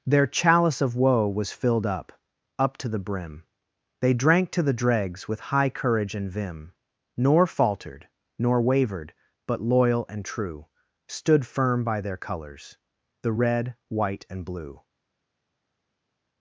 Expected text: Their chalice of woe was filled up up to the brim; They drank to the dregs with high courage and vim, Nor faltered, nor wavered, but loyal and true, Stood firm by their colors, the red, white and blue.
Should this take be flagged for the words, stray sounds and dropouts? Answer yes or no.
no